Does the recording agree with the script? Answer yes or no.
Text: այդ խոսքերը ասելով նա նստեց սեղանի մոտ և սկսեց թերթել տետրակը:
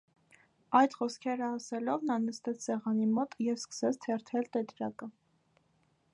yes